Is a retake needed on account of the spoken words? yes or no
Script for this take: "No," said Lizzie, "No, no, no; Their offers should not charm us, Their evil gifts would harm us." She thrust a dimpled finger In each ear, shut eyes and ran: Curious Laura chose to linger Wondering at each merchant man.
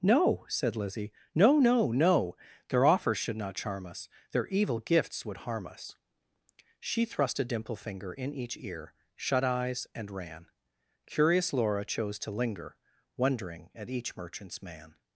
yes